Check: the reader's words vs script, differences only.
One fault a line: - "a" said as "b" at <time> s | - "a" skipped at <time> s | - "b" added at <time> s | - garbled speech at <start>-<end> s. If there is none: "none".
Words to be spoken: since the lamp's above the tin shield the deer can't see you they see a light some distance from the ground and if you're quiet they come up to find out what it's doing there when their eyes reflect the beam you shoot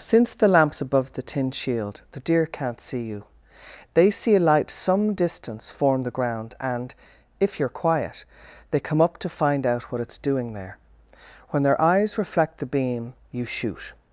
- "from" said as "form" at 5.7 s